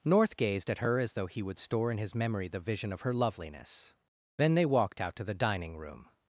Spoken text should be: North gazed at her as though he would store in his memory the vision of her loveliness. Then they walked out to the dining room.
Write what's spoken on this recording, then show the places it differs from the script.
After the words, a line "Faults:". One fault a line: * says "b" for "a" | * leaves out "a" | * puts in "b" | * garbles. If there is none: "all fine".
North gazed at her as though he would store in his memory the vision of her loveliness. Then they walked out to the dining room.
Faults:
all fine